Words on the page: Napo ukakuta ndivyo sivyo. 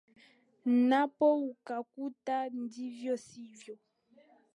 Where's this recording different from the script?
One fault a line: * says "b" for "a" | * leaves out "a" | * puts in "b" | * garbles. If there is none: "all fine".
all fine